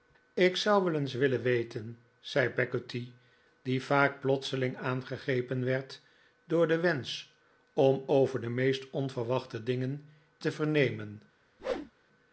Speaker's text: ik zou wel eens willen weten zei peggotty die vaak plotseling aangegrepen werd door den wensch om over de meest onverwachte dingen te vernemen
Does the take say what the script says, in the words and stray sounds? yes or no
no